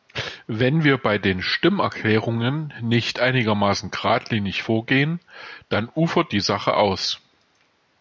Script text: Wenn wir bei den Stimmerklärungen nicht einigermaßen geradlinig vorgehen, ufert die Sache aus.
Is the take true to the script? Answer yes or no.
no